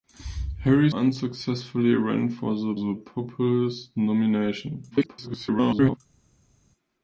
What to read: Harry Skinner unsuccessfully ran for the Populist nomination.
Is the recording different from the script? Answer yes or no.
yes